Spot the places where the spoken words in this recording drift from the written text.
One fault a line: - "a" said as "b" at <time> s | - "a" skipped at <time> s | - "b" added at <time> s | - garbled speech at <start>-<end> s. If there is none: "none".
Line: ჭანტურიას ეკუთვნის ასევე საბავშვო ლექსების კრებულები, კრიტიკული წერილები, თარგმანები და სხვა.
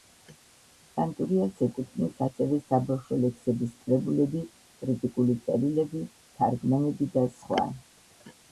none